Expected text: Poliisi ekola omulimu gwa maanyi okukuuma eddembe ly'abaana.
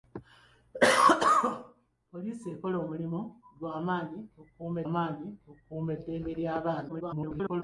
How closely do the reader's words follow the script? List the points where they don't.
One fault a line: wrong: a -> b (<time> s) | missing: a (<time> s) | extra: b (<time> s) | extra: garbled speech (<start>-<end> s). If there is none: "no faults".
extra: maanyi okukuuma (4.9 s)
extra: garbled speech (6.9-7.6 s)